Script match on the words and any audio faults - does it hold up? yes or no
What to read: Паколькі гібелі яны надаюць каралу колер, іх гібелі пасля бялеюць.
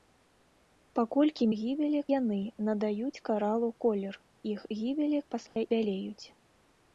no